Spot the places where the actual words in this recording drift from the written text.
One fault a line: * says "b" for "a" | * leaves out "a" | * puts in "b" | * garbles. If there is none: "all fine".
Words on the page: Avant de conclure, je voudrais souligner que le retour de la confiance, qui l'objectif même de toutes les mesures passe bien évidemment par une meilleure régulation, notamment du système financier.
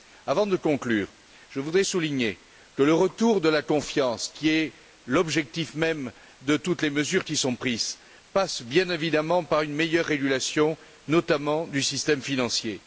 * puts in "est"
* puts in "qui sont prises"